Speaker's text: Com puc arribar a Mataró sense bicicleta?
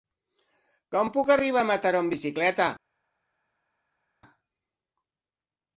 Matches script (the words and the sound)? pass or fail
fail